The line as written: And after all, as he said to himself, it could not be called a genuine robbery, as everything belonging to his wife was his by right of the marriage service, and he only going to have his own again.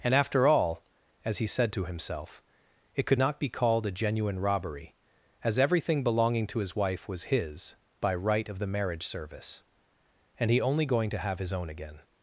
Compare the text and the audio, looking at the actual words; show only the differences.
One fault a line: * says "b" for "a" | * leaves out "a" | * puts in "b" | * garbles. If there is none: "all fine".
all fine